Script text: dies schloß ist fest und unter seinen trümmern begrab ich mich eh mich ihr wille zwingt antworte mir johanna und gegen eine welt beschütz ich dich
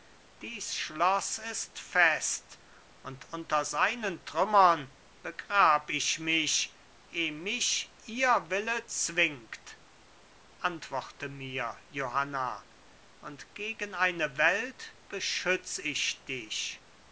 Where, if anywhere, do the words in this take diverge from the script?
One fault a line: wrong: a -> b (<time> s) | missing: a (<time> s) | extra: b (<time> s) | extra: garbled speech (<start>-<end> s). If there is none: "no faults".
no faults